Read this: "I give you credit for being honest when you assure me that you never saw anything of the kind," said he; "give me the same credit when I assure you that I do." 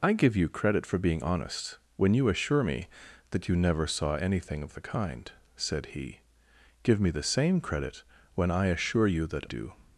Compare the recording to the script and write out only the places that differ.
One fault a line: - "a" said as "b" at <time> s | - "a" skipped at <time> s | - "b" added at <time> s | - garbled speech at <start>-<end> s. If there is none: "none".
- "I" skipped at 9.5 s